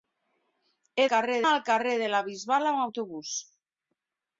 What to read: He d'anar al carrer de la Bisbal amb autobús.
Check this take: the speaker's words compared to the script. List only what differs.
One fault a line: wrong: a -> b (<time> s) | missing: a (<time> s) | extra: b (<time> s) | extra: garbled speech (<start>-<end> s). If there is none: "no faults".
wrong: d'anar -> carrer (1.1 s)